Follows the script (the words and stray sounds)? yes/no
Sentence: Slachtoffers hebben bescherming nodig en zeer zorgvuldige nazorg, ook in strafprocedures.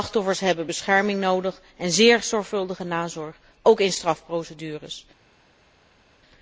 yes